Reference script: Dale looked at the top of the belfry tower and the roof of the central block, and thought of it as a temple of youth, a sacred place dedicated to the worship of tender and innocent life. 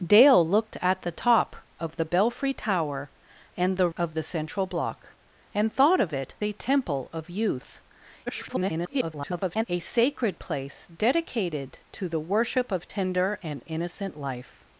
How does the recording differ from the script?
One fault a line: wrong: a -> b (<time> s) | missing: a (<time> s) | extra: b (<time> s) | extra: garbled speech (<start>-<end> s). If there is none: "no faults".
missing: roof (3.9 s)
missing: as (6.3 s)
extra: garbled speech (8.3-9.6 s)